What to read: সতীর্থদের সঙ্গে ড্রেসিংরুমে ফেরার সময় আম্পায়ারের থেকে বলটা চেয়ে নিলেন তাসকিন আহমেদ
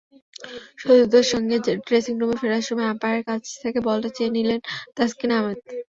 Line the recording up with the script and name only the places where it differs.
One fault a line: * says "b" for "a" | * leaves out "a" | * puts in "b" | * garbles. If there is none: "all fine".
* puts in "কাছ"